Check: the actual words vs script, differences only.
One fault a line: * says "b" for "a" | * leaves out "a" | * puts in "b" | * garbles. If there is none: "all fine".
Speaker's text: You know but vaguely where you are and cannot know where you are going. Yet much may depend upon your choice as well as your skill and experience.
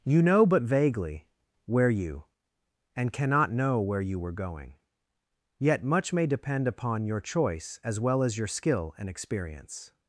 * leaves out "are"
* says "were" for "are"